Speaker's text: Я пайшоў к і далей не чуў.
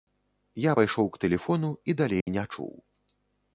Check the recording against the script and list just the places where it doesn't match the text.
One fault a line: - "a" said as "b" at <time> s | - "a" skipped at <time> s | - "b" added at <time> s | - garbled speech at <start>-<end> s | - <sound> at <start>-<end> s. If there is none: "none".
- "тэлефону" added at 1.2 s
- dropout at 2.2-2.3 s